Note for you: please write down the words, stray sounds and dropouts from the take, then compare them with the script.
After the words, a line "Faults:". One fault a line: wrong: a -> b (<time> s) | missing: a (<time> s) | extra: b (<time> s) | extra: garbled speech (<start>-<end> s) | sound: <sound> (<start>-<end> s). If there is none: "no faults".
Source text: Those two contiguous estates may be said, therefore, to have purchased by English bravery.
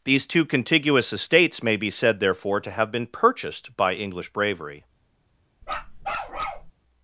These two contiguous estates may be said, therefore, to have been purchased by English bravery.
Faults:
wrong: Those -> These (0.0 s)
extra: been (2.9 s)
sound: bark (5.6-6.7 s)